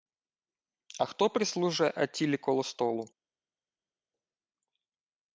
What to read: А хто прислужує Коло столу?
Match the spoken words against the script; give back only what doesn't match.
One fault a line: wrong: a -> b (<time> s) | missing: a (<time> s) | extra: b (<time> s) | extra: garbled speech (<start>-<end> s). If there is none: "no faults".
extra: Аттілі (1.9 s)